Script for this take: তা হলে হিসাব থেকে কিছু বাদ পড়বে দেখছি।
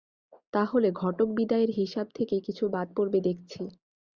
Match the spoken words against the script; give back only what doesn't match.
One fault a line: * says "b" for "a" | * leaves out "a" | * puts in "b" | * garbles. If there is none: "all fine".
* puts in "ঘটক বিদায়ের"